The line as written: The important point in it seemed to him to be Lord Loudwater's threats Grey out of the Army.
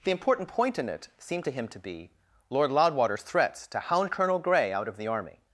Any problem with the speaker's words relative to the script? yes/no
yes